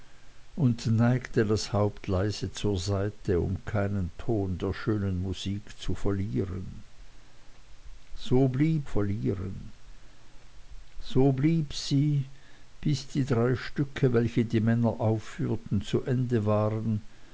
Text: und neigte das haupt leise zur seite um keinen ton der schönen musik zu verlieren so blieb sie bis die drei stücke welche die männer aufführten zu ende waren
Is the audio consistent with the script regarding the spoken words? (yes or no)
no